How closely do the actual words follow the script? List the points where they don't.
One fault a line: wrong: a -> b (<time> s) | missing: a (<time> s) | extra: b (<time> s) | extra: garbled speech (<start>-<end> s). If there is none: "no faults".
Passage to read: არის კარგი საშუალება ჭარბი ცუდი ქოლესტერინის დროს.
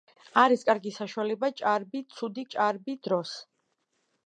wrong: ქოლესტერინის -> ჭარბი (2.5 s)